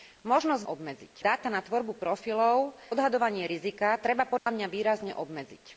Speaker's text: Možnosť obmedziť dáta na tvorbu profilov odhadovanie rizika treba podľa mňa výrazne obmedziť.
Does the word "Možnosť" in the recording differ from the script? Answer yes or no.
no